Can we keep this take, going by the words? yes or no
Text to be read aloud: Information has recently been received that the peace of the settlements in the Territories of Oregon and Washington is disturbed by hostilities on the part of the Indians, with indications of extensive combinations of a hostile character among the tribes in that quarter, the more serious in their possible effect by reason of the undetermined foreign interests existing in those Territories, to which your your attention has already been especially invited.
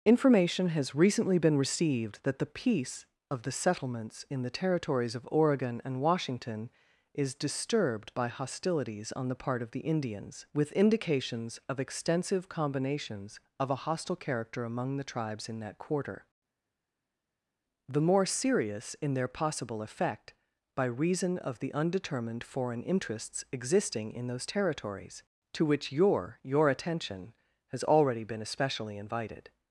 yes